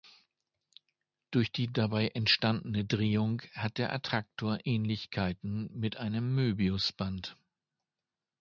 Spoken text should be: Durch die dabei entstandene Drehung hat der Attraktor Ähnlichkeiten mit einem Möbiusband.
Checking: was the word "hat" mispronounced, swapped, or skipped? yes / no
no